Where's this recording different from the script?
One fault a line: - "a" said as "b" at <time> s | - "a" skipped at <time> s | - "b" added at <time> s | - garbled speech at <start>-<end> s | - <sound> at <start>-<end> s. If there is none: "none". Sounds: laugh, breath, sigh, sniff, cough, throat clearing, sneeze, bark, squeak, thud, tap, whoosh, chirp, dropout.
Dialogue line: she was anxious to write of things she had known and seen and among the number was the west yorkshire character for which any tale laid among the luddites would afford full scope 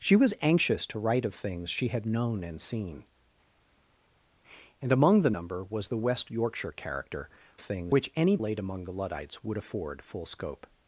- "for" said as "things" at 7.6 s
- "tale" skipped at 8.4 s